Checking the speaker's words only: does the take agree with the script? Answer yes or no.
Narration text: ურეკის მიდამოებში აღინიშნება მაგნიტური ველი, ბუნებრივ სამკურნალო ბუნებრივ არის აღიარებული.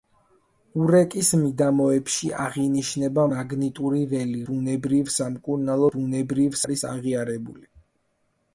yes